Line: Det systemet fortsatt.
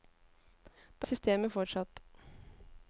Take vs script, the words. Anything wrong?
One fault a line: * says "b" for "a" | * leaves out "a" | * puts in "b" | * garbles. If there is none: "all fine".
all fine